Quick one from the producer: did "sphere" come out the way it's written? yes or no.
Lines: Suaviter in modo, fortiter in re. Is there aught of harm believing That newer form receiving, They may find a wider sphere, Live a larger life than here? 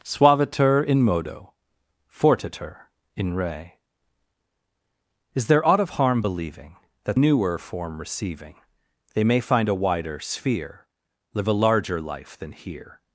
yes